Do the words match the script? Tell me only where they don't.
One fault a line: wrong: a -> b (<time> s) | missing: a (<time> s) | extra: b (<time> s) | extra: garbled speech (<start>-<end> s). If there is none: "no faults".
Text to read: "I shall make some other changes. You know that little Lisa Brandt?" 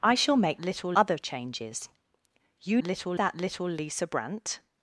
wrong: some -> little (0.6 s)
wrong: know -> little (2.8 s)